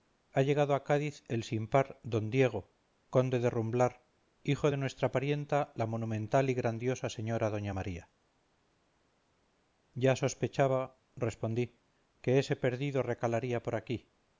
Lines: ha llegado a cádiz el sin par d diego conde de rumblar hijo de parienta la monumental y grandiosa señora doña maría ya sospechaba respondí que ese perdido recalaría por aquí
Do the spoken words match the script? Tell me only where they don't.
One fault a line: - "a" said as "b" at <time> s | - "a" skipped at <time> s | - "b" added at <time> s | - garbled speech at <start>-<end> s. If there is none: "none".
- "nuestra" added at 4.8 s